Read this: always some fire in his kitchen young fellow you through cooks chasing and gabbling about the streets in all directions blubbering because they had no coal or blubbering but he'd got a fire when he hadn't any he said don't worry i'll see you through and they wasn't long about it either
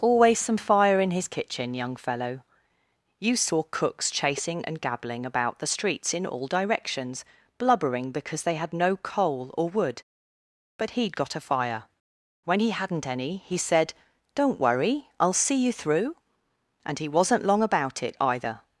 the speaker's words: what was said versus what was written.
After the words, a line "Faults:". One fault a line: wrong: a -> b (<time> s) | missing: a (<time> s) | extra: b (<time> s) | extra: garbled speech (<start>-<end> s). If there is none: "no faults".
always some fire in his kitchen young fellow you saw cooks chasing and gabbling about the streets in all directions blubbering because they had no coal or wood but he'd got a fire when he hadn't any he said don't worry i'll see you through and he wasn't long about it either
Faults:
wrong: through -> saw (3.4 s)
wrong: blubbering -> wood (9.7 s)
wrong: they -> he (17.0 s)